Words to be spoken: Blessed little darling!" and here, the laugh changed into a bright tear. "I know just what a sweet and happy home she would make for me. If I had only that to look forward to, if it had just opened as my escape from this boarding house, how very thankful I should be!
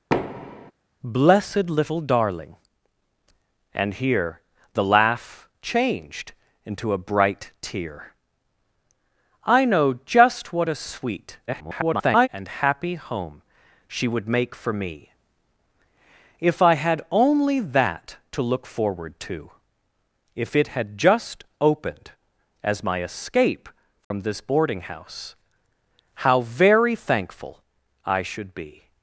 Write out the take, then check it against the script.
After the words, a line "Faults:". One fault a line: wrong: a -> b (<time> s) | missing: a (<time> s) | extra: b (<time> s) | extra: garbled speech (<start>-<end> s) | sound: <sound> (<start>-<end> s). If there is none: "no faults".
Blessed little darling!" and here, the laugh changed into a bright tear. "I know just what a sweet [garbled] and happy home she would make for me. If I had only that to look forward to, if it had just opened as my escape from this boarding house, how very thankful I should be!
Faults:
sound: thud (0.1-0.7 s)
extra: garbled speech (11.5-12.3 s)
sound: dropout (24.0-24.1 s)